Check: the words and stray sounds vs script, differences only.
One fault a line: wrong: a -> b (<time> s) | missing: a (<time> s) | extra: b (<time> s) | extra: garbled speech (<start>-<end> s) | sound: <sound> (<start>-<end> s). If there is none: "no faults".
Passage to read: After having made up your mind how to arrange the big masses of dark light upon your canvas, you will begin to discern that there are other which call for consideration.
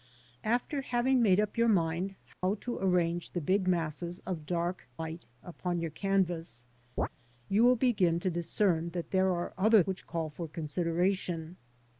sound: dropout (2.3-2.4 s)
sound: chirp (7.0-7.1 s)